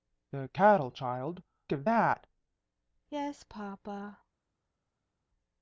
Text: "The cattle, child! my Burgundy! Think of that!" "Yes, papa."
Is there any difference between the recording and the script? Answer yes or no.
yes